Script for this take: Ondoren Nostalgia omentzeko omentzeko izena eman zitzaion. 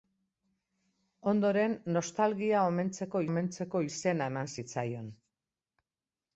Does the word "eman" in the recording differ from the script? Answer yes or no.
no